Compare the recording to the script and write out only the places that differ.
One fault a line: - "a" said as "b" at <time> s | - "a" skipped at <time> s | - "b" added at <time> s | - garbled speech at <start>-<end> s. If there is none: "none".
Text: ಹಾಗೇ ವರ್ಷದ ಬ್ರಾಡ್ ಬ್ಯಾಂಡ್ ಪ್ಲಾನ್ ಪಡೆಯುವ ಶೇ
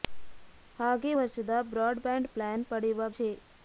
none